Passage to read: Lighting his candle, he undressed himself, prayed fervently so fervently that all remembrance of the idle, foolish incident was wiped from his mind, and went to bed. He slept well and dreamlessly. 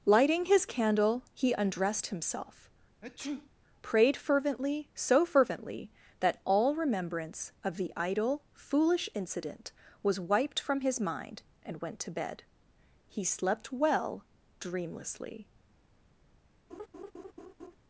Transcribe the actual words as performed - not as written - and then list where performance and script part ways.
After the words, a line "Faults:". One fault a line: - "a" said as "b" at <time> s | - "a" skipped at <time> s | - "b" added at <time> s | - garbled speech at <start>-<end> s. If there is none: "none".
Lighting his candle, he undressed himself, prayed fervently so fervently that all remembrance of the idle, foolish incident was wiped from his mind, and went to bed. He slept well dreamlessly.
Faults:
- "and" skipped at 14.2 s